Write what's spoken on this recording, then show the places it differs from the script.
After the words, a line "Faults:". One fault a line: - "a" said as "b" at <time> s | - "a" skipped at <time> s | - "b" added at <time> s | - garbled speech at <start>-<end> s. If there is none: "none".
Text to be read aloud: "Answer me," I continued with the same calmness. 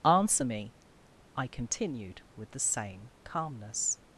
"Answer me," I continued with the same calmness.
Faults:
none